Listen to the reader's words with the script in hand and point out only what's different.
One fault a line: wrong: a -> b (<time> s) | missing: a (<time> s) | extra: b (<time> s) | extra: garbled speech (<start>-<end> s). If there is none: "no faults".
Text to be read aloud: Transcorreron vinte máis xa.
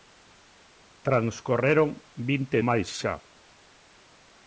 no faults